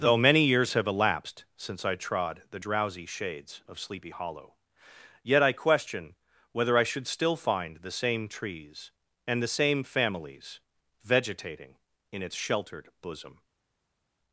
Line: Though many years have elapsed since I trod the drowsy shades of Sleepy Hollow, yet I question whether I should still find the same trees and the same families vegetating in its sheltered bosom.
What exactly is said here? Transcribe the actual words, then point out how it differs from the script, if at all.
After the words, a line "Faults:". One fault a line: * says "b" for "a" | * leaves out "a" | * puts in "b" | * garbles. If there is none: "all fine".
Though many years have elapsed since I trod the drowsy shades of Sleepy Hollow, yet I question whether I should still find the same trees and the same families vegetating in its sheltered bosom.
Faults:
all fine